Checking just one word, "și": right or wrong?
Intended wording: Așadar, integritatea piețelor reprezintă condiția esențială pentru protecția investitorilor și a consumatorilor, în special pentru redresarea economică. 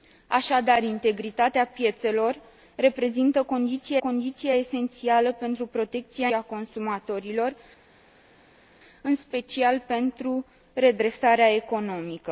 wrong